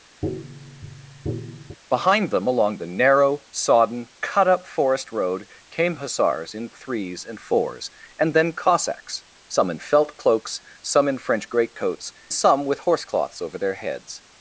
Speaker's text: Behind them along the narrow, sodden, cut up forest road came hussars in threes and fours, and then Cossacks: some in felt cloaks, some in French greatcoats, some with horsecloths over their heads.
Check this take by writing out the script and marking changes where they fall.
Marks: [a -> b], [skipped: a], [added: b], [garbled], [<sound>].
[tap] Behind them along the narrow, sodden, cut up forest road came hussars in threes and fours, and then Cossacks: some in felt cloaks, some in French greatcoats, some with horsecloths over their heads.